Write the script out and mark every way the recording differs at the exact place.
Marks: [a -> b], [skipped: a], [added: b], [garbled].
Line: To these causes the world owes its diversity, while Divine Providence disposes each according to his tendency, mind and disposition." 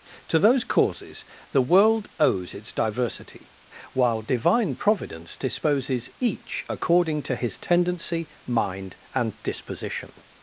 To [these -> those] causes the world owes its diversity, while Divine Providence disposes each according to his tendency, mind and disposition."